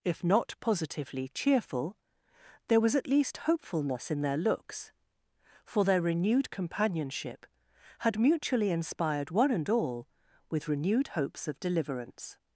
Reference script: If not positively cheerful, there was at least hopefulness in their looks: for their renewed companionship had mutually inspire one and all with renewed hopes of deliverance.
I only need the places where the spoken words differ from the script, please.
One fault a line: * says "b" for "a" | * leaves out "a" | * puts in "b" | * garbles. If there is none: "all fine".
* says "inspired" for "inspire"